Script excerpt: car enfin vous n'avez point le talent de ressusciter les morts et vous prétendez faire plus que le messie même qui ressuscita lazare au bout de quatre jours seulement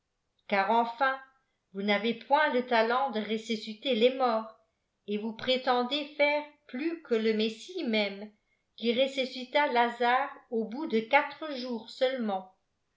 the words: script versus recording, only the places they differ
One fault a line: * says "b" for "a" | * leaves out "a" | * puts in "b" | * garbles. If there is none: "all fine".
all fine